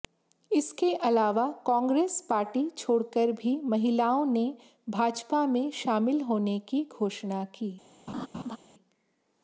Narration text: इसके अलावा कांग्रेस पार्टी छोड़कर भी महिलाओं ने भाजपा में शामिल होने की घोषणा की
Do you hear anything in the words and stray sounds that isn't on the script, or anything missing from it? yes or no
yes